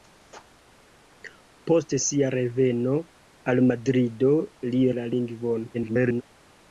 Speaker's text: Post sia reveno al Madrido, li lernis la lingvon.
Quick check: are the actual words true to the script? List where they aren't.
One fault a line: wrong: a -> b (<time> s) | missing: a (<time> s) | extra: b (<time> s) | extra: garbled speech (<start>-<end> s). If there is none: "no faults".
missing: lernis (4.8 s)
extra: garbled speech (5.7-6.2 s)